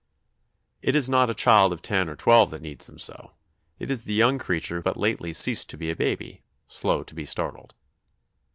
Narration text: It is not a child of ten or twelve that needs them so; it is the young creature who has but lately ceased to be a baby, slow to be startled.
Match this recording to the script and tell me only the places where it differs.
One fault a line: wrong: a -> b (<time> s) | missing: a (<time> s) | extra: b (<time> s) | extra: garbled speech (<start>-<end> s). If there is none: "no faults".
missing: who has (4.8 s)